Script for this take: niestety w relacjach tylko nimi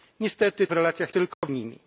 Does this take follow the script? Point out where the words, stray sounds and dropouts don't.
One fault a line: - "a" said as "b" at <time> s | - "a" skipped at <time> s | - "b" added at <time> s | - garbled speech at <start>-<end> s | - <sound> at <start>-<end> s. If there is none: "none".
- dropout at 1.3-1.4 s